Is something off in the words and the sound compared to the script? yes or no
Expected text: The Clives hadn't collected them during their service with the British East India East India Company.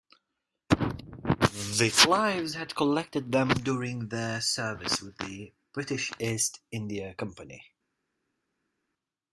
yes